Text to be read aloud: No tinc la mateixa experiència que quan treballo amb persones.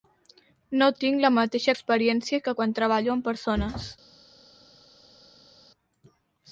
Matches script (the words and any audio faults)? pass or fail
pass